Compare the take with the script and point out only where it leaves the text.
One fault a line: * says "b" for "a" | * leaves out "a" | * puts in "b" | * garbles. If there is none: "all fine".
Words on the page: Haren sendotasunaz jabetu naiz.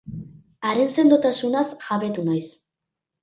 all fine